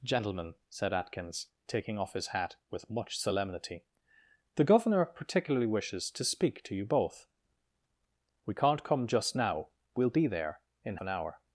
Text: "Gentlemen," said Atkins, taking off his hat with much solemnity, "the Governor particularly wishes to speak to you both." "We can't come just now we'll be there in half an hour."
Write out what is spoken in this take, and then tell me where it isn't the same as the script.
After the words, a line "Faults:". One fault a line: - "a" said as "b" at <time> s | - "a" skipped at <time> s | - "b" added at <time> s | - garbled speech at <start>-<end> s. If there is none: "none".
"Gentlemen," said Atkins, taking off his hat with much solemnity, "the Governor particularly wishes to speak to you both." "We can't come just now we'll be there in an hour."
Faults:
- "half" skipped at 11.0 s